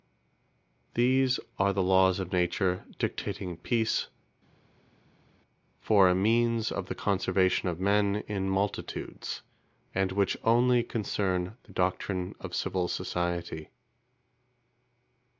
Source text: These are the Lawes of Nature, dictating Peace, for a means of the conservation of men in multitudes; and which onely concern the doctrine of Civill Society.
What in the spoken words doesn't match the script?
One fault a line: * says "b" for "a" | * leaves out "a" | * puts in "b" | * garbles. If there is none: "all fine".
all fine